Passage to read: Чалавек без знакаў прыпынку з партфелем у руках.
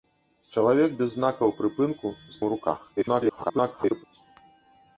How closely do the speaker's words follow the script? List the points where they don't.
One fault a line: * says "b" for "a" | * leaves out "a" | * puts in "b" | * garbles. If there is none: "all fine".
* leaves out "партфелем"
* garbles